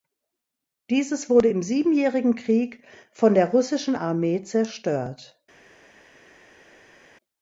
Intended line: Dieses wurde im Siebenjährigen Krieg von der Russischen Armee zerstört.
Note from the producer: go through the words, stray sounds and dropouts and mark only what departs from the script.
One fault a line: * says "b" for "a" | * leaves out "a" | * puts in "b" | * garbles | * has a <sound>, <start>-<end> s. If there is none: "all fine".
all fine